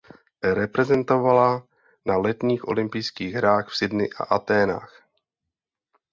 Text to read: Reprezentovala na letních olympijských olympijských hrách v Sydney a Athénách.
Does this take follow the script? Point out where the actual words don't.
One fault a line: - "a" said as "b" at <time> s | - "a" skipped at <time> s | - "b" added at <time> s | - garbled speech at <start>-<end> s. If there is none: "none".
- "olympijských" skipped at 3.3 s